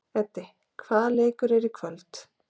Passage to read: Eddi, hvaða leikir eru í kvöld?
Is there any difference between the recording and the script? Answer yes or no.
no